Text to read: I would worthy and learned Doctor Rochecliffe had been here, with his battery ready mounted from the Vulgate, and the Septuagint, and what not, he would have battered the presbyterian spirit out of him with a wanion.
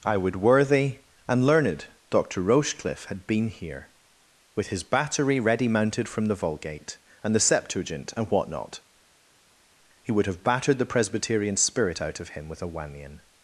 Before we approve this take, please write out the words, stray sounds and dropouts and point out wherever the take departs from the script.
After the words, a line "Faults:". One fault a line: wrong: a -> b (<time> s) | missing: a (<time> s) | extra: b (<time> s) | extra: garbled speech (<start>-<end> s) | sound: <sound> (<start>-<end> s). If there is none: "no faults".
I would worthy and learned Doctor Rochecliffe had been here, with his battery ready mounted from the Vulgate, and the Septuagint, and what not, he would have battered the presbyterian spirit out of him with a wanion.
Faults:
no faults